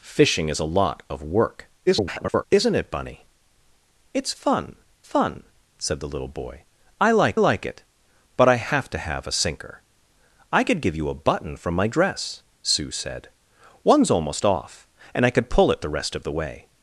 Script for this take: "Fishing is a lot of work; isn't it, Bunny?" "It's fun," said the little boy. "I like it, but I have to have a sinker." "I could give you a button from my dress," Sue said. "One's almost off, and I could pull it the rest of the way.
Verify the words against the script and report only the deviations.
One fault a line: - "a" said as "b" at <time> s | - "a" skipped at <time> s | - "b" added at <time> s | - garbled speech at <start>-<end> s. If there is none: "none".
- garbled speech at 1.9-2.4 s
- "fun" added at 5.0 s
- "like" added at 7.4 s